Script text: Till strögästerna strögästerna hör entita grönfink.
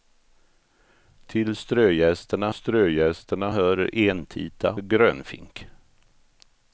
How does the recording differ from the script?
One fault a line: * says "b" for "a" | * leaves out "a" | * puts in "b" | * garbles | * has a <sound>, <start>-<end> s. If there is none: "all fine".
all fine